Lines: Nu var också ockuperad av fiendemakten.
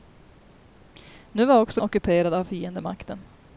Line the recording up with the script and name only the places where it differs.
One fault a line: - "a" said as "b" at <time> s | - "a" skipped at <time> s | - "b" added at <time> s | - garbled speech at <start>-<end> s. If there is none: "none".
none